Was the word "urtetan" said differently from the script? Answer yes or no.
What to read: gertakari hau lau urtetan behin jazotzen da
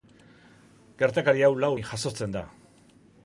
yes